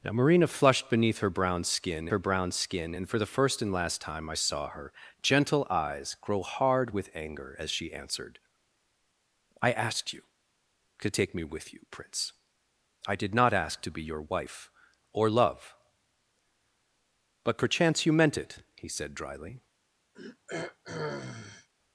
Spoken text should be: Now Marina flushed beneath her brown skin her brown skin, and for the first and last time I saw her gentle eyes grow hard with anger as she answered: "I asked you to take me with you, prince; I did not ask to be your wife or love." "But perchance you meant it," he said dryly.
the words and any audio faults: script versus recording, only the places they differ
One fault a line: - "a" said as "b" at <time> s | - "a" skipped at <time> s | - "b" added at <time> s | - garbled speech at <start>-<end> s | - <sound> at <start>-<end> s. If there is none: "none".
- throat clearing at 20.1-21.7 s